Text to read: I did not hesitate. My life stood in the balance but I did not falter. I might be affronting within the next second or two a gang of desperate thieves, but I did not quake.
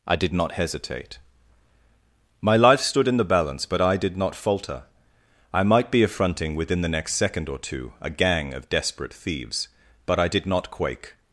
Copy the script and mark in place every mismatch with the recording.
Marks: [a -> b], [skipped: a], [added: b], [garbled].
I did not hesitate. My life stood in the balance but I did not falter. I might be affronting within the next second or two a gang of desperate thieves, but I did not quake.